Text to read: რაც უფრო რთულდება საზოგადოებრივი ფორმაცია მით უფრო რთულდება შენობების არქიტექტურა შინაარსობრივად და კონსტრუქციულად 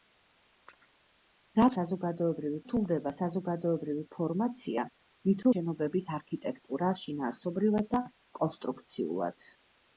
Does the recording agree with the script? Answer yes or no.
no